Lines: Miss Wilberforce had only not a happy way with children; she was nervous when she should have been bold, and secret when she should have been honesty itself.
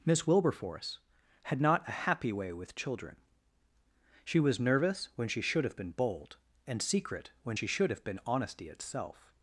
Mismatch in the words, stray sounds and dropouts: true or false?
true